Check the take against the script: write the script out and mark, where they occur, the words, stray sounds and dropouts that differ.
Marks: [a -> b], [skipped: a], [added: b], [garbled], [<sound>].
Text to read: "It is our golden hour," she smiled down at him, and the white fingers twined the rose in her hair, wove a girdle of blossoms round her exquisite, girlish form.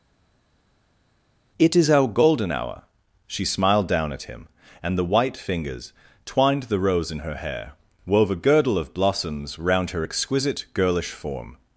"It is our golden hour," she smiled down at him, and the white fingers twined the rose in her hair, wove a girdle of blossoms round her exquisite, girlish form.